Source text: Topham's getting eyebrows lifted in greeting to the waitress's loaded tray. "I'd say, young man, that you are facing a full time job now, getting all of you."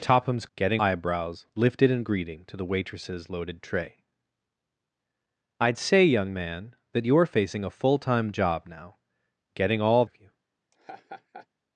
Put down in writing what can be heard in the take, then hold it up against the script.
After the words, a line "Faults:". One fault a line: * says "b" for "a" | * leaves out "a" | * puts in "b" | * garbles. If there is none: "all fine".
Topham's getting eyebrows lifted in greeting to the waitress's loaded tray. "I'd say, young man, that you are facing a full time job now, getting all of you."
Faults:
all fine